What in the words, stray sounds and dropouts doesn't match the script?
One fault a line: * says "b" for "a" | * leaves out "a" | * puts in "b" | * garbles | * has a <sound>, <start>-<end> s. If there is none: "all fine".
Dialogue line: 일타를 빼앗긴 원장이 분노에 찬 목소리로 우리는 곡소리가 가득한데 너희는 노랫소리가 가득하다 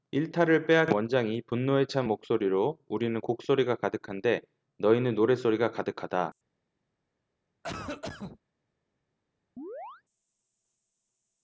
* has a cough, 7.6-8.4 s
* has a chirp, 9.6-10.0 s